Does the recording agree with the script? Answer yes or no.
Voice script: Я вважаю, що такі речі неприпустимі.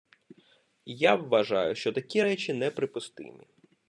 yes